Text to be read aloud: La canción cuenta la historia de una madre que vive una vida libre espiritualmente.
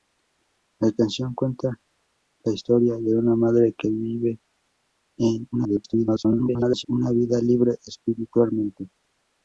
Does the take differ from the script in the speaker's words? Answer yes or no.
yes